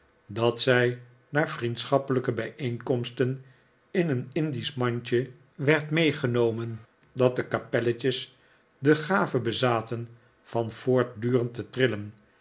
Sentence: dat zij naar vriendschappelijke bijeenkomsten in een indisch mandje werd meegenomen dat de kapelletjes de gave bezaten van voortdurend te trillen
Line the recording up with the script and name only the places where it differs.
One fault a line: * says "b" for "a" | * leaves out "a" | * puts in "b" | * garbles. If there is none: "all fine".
all fine